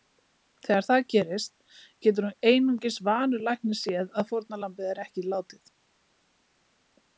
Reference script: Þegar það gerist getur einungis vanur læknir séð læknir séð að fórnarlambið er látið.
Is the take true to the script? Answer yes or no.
no